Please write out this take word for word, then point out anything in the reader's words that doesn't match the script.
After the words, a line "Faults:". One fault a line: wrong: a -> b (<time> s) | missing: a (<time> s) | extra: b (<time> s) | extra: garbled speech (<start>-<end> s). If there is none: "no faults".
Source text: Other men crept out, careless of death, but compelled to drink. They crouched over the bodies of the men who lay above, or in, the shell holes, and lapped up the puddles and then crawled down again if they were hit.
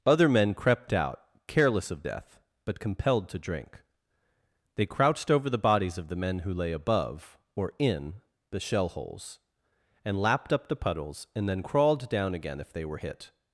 Other men crept out, careless of death, but compelled to drink. They crouched over the bodies of the men who lay above, or in, the shell holes, and lapped up the puddles and then crawled down again if they were hit.
Faults:
no faults